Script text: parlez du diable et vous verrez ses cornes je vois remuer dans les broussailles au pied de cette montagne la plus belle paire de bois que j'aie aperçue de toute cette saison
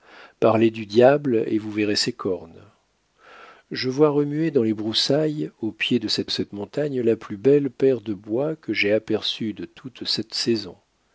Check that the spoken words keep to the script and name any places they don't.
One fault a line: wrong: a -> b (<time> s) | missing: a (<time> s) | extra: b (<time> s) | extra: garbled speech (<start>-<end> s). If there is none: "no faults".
extra: cette (6.3 s)